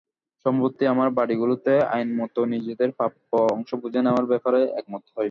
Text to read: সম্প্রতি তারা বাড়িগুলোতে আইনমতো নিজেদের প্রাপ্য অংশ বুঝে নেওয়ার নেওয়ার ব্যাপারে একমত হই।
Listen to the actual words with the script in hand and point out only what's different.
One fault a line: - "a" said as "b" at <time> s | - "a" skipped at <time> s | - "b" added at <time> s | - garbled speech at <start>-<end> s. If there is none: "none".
- "তারা" said as "আমরা" at 0.9 s
- "নেওয়ার" skipped at 4.2 s